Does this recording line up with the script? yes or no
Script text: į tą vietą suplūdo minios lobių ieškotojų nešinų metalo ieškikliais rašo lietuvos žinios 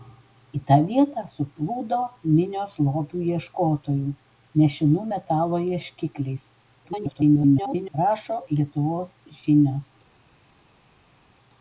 no